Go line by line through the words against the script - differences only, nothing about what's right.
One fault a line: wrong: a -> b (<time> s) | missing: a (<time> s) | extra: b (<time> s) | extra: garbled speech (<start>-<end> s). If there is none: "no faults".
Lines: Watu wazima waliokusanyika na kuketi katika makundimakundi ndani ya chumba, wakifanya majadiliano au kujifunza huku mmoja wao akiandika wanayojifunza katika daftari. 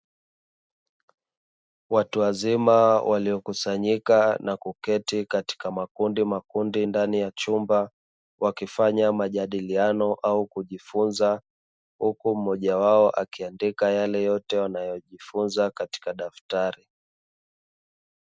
extra: yale yote (13.9 s)